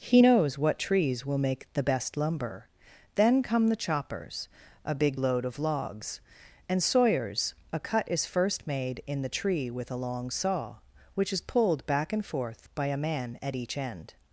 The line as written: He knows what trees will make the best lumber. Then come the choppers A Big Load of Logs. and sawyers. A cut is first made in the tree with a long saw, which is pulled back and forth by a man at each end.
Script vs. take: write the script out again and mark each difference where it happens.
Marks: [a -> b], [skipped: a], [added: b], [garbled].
He knows what trees will make the best lumber. Then come the choppers A Big Load of Logs. and sawyers. A cut is first made in the tree with a long saw, which is pulled back and forth by a man at each end.